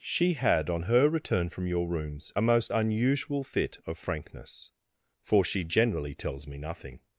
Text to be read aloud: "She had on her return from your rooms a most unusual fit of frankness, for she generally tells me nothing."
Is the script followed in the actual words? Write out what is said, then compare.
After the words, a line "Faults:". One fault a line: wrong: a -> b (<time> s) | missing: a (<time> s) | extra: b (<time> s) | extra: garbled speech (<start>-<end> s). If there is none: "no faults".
"She had on her return from your rooms a most unusual fit of frankness, for she generally tells me nothing."
Faults:
no faults